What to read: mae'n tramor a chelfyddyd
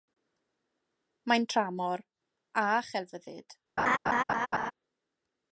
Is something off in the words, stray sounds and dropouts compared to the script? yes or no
yes